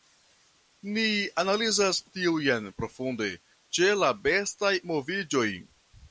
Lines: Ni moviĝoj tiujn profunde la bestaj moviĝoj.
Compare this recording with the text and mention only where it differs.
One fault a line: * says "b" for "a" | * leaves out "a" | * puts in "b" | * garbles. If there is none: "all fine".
* says "analizas" for "moviĝoj"
* puts in "ĉe"